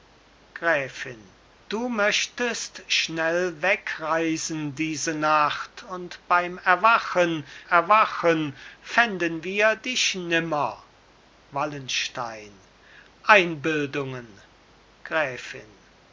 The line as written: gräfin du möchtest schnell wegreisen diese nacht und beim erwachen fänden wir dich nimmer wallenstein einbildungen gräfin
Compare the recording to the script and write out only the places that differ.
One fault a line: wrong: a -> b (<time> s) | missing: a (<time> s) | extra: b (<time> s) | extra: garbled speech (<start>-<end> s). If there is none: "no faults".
extra: erwachen (7.6 s)